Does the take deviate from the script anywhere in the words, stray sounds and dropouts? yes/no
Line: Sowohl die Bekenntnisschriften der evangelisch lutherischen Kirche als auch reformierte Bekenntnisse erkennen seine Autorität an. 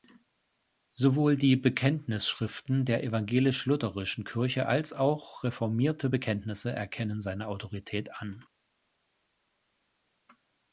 no